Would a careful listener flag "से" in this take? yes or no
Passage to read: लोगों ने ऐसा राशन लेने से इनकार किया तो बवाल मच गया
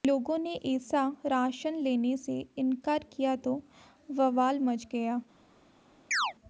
no